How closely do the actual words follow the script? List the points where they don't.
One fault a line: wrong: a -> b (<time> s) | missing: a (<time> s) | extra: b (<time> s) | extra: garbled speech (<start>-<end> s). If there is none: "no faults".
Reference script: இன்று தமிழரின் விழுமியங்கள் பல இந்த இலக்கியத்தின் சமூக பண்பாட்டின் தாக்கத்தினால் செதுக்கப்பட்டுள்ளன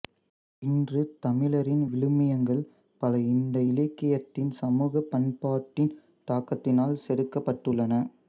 no faults